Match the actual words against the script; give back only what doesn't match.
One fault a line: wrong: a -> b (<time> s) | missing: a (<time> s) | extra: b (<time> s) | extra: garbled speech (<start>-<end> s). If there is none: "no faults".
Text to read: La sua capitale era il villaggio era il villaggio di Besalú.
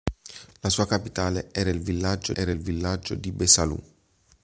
no faults